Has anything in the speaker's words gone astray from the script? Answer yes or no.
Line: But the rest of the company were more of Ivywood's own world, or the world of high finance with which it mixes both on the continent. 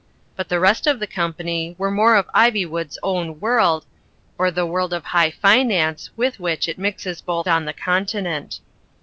no